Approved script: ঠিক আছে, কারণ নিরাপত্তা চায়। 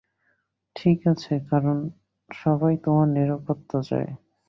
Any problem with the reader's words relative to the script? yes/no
yes